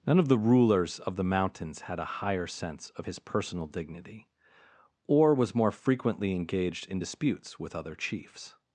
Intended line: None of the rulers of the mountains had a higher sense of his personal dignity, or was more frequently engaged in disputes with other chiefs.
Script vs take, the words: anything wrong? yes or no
no